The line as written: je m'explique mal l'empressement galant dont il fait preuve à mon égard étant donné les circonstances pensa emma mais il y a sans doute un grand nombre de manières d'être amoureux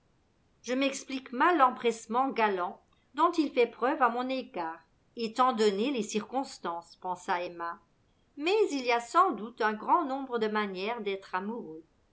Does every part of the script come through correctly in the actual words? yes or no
yes